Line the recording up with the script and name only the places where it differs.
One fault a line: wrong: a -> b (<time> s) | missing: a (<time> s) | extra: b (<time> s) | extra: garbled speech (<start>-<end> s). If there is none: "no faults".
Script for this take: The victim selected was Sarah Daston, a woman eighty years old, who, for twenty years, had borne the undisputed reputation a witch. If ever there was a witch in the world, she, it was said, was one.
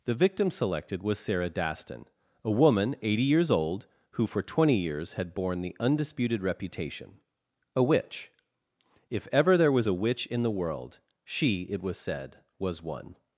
no faults